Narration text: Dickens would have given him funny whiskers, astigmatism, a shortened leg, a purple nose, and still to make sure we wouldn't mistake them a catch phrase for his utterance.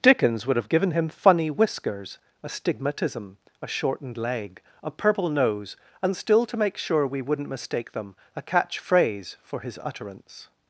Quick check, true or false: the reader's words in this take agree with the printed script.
true